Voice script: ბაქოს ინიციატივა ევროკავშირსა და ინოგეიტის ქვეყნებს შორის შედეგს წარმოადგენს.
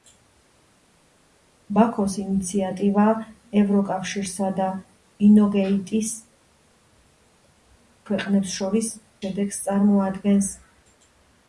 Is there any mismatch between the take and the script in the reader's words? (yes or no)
no